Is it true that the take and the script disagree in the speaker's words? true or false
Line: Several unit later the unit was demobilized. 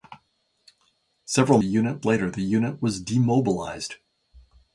false